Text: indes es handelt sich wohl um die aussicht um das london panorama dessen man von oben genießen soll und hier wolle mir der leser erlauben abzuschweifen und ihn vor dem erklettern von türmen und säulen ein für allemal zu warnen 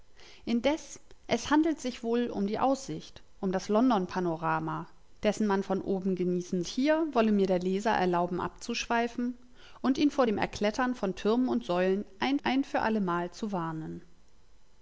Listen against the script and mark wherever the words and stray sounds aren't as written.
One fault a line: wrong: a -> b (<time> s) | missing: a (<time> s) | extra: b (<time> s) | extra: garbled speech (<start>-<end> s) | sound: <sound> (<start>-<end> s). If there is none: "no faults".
missing: soll und (6.6 s)
extra: ein (12.4 s)